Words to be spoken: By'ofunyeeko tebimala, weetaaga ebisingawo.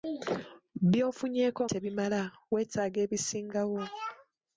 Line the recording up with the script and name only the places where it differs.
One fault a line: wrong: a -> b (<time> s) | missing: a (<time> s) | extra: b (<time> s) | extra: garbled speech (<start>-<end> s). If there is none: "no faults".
no faults